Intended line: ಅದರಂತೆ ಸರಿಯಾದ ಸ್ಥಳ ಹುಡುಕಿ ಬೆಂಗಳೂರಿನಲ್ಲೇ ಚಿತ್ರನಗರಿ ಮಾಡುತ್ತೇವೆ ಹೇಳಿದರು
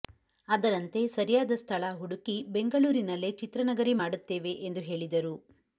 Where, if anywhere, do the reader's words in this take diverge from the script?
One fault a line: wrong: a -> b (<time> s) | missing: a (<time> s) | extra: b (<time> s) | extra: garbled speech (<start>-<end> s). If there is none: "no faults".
extra: ಎಂದು (4.7 s)